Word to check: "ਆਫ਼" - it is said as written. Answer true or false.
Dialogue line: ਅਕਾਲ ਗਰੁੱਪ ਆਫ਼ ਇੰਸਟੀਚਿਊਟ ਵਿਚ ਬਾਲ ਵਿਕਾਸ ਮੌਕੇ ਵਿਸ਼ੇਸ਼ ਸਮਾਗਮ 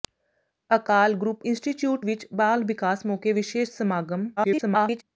false